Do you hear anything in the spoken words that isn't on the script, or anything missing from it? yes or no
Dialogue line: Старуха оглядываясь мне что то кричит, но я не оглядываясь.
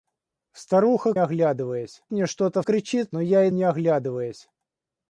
no